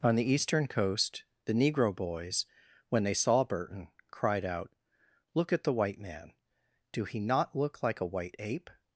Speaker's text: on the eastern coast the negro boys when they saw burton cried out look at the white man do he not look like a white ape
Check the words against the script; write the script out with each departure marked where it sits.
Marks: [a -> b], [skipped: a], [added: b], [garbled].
on the eastern coast the negro boys when they saw burton cried out look at the white man do he not look like a white ape